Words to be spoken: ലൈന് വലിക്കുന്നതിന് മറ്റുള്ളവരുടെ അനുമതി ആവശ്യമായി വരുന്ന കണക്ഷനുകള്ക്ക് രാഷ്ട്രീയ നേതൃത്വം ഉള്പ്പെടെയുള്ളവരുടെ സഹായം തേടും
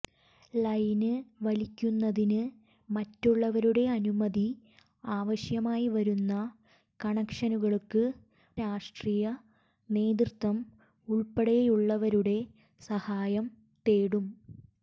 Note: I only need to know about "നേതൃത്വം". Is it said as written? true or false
true